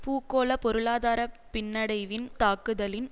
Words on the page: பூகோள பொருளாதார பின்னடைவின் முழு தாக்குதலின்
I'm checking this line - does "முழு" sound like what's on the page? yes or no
no